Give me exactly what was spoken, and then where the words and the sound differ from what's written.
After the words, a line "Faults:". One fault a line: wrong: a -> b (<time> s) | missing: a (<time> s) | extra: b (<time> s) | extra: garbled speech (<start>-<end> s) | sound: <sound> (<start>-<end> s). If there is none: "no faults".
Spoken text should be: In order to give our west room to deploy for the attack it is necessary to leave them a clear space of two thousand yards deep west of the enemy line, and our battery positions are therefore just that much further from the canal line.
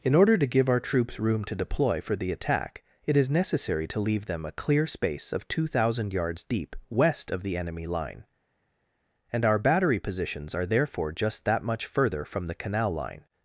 In order to give our troops room to deploy for the attack it is necessary to leave them a clear space of two thousand yards deep west of the enemy line, and our battery positions are therefore just that much further from the canal line.
Faults:
wrong: west -> troops (0.8 s)